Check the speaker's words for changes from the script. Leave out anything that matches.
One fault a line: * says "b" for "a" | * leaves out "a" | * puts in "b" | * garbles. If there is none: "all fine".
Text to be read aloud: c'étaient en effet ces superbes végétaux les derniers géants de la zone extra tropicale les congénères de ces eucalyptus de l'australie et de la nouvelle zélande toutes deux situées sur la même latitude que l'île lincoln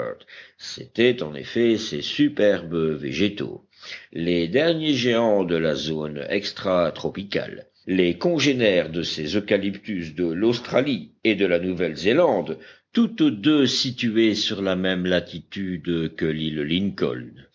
all fine